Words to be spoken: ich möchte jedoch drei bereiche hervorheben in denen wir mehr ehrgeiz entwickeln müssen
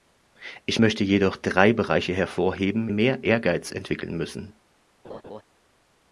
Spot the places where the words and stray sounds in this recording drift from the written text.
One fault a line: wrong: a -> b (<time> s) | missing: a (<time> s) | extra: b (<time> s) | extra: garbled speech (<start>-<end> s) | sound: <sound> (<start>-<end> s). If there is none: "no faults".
missing: in denen wir (2.9 s)
sound: laugh (5.0-5.4 s)